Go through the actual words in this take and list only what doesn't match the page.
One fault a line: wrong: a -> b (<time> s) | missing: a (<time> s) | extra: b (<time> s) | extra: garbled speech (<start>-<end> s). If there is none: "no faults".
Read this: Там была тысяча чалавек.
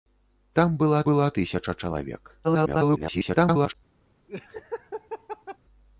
extra: была (1.0 s)
extra: garbled speech (2.4-3.8 s)